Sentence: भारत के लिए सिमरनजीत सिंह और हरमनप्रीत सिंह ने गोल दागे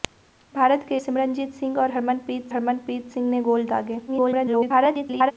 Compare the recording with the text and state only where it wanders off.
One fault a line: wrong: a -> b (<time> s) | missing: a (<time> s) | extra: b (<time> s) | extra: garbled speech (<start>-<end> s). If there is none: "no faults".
missing: लिए (1.0 s)
extra: हरमनप्रीत (2.5 s)
extra: garbled speech (4.1-5.3 s)